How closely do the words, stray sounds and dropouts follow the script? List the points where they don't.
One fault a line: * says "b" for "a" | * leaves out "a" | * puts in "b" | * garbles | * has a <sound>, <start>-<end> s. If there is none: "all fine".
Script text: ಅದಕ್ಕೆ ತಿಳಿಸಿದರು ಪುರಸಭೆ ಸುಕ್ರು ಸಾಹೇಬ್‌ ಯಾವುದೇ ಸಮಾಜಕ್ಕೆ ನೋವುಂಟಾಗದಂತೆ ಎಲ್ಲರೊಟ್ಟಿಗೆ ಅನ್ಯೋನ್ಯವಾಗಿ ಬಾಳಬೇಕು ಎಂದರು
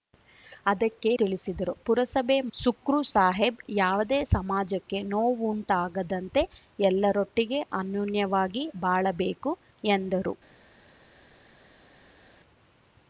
all fine